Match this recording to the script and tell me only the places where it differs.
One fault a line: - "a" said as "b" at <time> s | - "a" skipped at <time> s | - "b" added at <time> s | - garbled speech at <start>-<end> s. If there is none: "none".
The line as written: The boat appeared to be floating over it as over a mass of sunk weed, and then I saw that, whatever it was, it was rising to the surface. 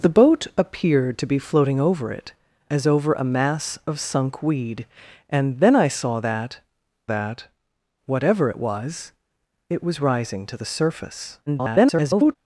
- "that" added at 7.1 s
- garbled speech at 11.5-12.4 s